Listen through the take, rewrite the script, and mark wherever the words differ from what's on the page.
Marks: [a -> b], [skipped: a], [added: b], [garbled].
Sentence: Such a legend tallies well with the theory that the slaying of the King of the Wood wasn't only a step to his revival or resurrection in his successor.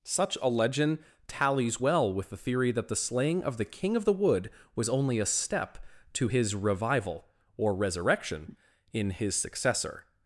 Such a legend tallies well with the theory that the slaying of the King of the Wood [wasn't -> was] only a step to his revival or resurrection in his successor.